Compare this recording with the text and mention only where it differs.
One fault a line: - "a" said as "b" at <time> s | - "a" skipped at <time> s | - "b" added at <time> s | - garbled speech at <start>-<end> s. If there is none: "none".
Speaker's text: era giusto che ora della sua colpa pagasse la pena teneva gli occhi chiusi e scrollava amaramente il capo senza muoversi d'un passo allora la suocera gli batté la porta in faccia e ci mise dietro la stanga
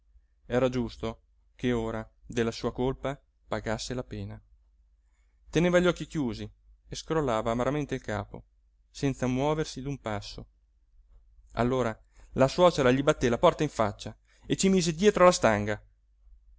none